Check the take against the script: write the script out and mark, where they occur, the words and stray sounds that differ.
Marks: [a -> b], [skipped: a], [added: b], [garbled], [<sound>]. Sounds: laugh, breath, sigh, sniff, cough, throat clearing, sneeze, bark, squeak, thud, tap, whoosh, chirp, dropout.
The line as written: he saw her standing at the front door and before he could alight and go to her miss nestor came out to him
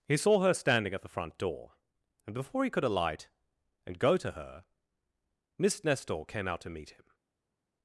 he saw her standing at the front door and before he could alight and go to her miss nestor came out to [added: meet] him